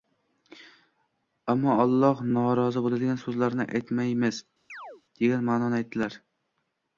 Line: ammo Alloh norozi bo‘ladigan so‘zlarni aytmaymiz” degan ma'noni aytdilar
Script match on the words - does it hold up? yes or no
yes